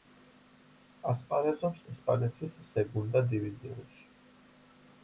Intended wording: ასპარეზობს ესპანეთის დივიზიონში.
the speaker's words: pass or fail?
fail